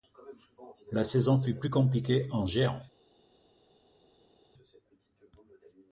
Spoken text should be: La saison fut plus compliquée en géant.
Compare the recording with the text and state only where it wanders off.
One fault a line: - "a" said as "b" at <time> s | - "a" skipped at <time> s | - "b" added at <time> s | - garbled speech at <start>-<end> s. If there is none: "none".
none